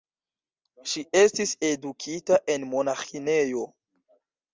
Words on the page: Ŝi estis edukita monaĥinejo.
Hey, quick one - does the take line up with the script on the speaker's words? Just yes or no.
no